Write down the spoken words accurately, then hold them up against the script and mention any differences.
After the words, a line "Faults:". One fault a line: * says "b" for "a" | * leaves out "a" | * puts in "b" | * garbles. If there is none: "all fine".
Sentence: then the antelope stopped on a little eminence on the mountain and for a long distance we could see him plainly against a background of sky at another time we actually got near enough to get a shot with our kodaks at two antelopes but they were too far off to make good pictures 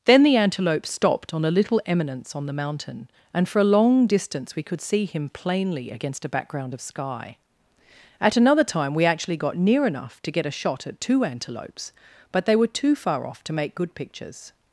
then the antelope stopped on a little eminence on the mountain and for a long distance we could see him plainly against a background of sky at another time we actually got near enough to get a shot at two antelopes but they were too far off to make good pictures
Faults:
* leaves out "with our kodaks"